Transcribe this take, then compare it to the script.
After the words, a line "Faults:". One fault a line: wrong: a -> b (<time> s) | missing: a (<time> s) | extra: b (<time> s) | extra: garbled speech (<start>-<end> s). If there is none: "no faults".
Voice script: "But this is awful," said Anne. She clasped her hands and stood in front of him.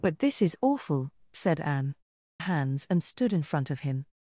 "But this is awful," said Anne. Hands and stood in front of him.
Faults:
missing: She clasped her (1.9 s)